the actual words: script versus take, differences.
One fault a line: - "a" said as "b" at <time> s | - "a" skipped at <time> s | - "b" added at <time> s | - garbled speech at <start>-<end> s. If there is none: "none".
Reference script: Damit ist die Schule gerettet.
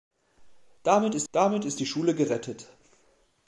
- "damit ist" added at 1.3 s